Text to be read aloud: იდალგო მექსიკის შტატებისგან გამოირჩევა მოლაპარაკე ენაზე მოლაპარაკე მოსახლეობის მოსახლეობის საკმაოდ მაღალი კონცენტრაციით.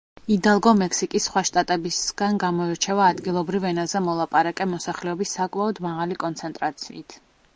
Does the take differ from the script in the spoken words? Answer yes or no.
yes